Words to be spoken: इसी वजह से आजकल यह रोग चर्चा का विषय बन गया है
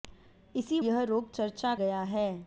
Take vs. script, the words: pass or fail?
fail